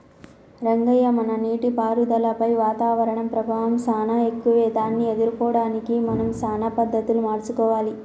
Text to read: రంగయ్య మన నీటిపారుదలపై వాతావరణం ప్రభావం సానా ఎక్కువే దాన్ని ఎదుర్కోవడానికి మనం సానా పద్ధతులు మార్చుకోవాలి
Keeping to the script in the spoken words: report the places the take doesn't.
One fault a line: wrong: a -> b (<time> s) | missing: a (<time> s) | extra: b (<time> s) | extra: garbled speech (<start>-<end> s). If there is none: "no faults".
no faults